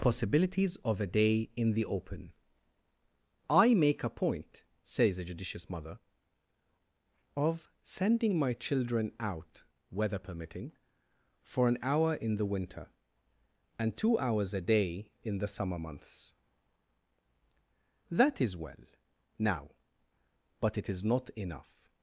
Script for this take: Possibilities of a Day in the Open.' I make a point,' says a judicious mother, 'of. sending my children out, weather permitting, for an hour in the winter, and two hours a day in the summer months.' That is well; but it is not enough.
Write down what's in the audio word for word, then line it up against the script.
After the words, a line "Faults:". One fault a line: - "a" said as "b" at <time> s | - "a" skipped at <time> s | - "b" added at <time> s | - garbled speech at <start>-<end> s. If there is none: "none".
Possibilities of a Day in the Open.' I make a point,' says a judicious mother, 'of. sending my children out, weather permitting, for an hour in the winter, and two hours a day in the summer months.' That is well; now but it is not enough.
Faults:
- "now" added at 19.4 s